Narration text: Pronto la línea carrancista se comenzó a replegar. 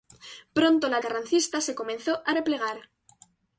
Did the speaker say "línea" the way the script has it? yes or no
no